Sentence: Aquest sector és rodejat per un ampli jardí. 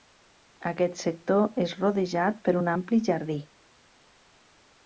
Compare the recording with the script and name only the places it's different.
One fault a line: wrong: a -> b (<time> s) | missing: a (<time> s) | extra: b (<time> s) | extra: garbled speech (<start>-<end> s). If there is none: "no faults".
no faults